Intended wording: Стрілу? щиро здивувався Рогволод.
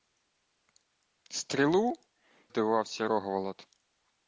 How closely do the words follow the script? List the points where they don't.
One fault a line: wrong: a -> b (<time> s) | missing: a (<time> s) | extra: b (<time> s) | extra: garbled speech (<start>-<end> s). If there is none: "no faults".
missing: щиро (1.9 s)